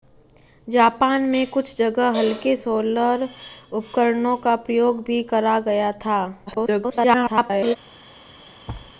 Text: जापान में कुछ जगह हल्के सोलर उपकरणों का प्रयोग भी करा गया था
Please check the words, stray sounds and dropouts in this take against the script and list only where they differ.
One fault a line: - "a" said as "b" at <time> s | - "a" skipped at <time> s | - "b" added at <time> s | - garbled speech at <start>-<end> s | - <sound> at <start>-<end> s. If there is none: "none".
- garbled speech at 6.5-7.8 s
- thud at 8.7-8.9 s